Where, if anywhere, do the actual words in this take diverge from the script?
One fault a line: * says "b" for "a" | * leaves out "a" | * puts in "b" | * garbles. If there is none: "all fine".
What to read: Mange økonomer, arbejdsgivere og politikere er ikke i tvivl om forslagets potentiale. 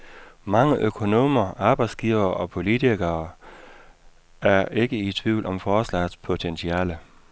all fine